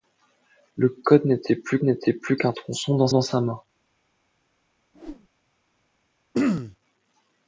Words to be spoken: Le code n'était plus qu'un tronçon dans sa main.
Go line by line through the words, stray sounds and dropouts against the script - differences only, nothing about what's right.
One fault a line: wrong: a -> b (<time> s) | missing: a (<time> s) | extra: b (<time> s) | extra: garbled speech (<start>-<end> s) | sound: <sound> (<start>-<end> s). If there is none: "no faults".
extra: n'était plus (1.8 s)
extra: dans (3.1 s)
sound: whoosh (4.9-5.3 s)
sound: throat clearing (6.3-6.8 s)